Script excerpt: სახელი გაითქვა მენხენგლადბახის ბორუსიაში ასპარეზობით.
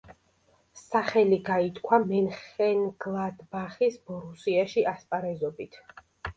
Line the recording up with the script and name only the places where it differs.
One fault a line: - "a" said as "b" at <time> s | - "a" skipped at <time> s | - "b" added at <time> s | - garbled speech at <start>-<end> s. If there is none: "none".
none